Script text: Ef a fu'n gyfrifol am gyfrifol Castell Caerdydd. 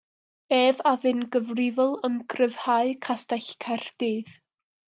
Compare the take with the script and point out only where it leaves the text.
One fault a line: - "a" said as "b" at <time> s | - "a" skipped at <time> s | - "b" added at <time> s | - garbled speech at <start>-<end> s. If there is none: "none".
- "gyfrifol" said as "gryfhau" at 2.4 s